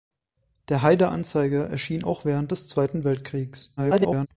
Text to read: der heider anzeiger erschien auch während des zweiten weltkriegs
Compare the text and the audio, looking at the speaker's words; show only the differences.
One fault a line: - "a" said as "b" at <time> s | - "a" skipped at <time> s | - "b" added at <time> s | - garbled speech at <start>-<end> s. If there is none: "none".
- garbled speech at 3.8-4.3 s